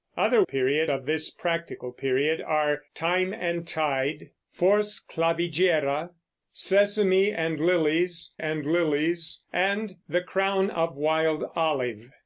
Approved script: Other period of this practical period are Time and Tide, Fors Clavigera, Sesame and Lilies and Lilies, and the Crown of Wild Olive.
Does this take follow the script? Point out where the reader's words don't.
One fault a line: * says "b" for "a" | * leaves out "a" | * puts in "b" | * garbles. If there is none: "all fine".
all fine